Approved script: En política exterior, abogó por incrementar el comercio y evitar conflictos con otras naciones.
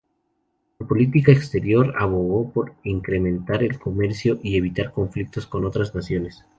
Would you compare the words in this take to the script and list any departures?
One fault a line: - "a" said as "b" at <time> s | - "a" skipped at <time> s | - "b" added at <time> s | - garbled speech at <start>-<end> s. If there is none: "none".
none